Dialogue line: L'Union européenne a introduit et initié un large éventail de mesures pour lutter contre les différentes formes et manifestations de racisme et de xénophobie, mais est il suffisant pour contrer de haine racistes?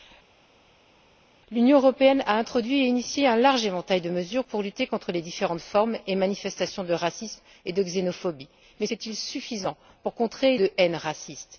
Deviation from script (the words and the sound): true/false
false